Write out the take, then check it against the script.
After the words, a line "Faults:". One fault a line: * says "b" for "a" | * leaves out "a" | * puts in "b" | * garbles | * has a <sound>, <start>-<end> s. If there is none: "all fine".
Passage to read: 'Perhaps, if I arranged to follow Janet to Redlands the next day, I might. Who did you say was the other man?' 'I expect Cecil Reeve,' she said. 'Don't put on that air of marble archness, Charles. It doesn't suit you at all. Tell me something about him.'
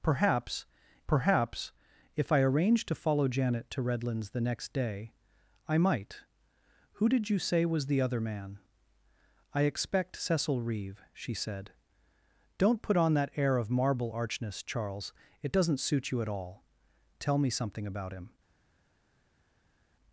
'Perhaps perhaps, if I arranged to follow Janet to Redlands the next day, I might. Who did you say was the other man?' 'I expect Cecil Reeve,' she said. 'Don't put on that air of marble archness, Charles. It doesn't suit you at all. Tell me something about him.'
Faults:
* puts in "perhaps"